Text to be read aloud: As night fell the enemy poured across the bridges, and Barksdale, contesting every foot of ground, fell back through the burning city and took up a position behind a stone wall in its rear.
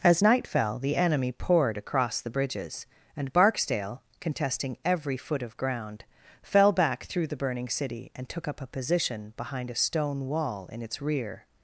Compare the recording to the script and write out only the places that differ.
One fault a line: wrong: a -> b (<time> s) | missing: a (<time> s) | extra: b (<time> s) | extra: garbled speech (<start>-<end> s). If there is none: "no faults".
no faults